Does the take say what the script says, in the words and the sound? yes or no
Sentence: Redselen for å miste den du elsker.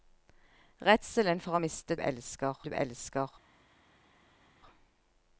no